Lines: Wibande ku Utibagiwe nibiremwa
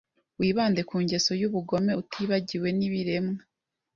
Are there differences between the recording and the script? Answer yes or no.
yes